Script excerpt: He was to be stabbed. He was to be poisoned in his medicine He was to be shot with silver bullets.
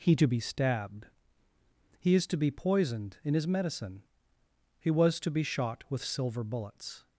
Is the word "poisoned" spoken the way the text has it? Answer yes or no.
yes